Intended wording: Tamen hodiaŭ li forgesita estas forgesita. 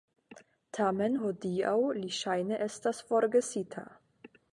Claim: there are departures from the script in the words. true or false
true